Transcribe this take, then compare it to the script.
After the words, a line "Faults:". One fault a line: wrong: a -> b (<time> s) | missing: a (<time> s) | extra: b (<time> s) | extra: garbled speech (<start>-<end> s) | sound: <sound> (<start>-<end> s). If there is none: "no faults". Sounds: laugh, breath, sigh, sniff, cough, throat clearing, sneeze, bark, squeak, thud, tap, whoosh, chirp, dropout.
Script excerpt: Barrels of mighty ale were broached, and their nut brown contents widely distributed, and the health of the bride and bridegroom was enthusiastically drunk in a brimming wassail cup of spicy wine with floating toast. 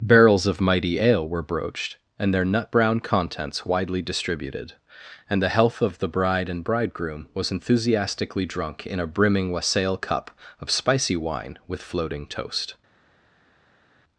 Barrels of mighty ale were broached, and their nut brown contents widely distributed, and the health of the bride and bridegroom was enthusiastically drunk in a brimming wassail cup of spicy wine with floating toast.
Faults:
no faults